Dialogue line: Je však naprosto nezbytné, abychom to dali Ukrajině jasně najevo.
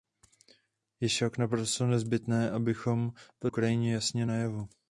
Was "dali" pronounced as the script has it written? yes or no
no